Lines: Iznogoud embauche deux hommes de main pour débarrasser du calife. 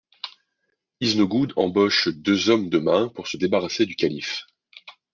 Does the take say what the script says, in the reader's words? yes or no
no